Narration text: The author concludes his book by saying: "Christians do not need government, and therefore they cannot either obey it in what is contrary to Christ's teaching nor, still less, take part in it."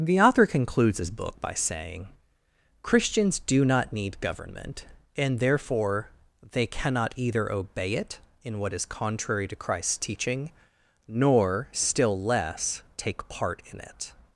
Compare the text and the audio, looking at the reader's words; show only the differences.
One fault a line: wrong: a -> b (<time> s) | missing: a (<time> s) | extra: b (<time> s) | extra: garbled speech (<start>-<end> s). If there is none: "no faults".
no faults